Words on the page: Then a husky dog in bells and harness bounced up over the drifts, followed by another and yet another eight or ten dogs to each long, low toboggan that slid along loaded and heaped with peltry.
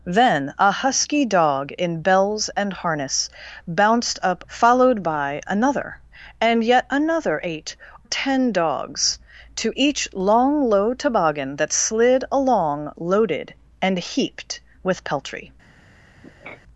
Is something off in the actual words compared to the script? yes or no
yes